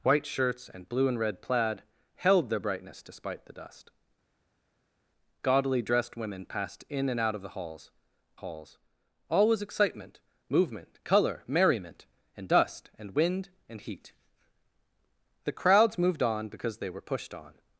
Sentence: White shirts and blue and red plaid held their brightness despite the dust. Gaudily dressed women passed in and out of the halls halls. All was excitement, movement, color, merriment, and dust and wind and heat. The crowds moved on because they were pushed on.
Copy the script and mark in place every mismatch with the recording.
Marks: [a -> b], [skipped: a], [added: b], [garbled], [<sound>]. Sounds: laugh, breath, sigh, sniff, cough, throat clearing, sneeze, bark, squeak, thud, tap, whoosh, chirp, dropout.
White shirts and blue and red plaid held their brightness despite the dust. Gaudily dressed women passed in and out of the halls halls. All was excitement, movement, color, merriment, and dust and wind and heat. The crowds moved on because they were pushed on.